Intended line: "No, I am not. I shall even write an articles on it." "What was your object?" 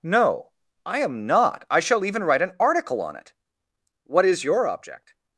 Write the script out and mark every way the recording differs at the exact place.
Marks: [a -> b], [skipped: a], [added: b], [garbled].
"No, I am not. I shall even write an [articles -> article] on it." "What [was -> is] your object?"